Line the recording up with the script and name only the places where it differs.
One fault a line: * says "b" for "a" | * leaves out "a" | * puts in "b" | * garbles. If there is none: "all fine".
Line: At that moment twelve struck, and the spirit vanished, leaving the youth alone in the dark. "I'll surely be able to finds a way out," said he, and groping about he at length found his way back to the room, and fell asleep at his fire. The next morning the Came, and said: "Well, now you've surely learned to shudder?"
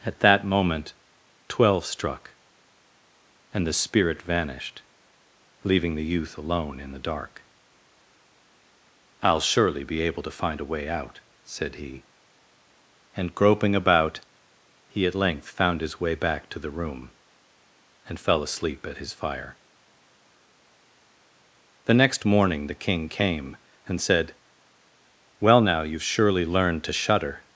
* says "find" for "finds"
* puts in "King"